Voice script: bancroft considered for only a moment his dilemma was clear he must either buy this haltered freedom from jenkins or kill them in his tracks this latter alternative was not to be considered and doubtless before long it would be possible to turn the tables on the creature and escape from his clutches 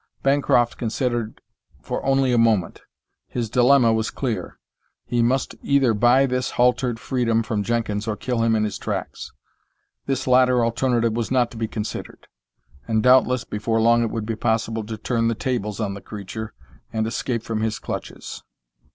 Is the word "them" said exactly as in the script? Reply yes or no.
no